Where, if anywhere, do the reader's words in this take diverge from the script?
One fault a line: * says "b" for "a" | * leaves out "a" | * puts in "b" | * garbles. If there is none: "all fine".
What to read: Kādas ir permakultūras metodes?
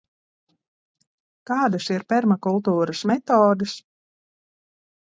all fine